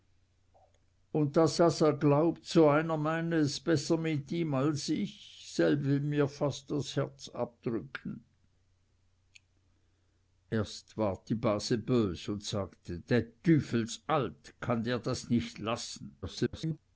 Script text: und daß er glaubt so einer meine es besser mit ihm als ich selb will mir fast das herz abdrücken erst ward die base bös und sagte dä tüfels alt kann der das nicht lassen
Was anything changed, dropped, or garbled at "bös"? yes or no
no